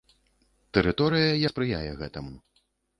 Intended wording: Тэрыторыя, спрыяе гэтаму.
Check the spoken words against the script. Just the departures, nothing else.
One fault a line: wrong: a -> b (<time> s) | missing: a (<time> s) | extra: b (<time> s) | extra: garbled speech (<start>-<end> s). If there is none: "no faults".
no faults